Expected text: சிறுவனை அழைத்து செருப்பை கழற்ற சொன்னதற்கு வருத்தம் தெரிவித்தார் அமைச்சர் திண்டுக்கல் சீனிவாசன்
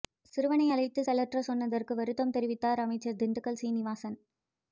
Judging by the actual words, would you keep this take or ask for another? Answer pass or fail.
fail